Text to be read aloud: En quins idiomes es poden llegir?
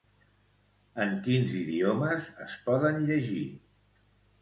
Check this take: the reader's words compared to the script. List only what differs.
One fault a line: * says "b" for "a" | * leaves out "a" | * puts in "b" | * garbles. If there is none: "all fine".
all fine